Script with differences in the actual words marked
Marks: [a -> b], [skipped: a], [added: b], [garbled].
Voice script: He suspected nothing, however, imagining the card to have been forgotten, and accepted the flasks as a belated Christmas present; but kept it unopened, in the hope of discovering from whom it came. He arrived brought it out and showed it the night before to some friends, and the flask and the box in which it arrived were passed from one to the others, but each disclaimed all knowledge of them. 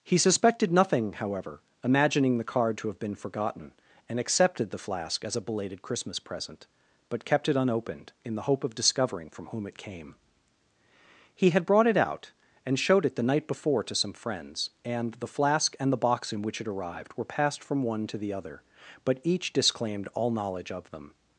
He suspected nothing, however, imagining the card to have been forgotten, and accepted the [flasks -> flask] as a belated Christmas present; but kept it unopened, in the hope of discovering from whom it came. He [arrived -> had] brought it out and showed it the night before to some friends, and the flask and the box in which it arrived were passed from one to the [others, -> other] but each disclaimed all knowledge of them.